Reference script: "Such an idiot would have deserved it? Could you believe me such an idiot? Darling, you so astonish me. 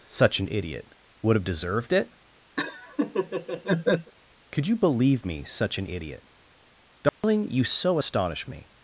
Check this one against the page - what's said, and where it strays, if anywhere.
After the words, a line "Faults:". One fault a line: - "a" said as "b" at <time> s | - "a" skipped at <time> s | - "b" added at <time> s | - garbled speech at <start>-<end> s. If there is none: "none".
"Such an idiot would have deserved it? Could you believe me such an idiot? Darling, you so astonish me.
Faults:
none